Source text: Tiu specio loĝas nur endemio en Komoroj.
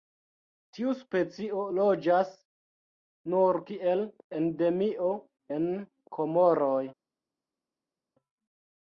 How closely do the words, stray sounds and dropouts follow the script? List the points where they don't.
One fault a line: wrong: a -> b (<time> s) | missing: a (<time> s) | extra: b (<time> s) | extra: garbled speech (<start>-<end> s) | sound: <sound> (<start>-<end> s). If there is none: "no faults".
extra: kiel (3.7 s)